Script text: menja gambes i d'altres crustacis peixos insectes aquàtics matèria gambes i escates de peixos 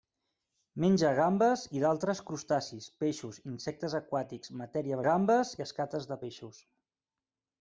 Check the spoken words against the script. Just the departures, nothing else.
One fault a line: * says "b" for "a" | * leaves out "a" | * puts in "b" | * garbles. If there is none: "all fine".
all fine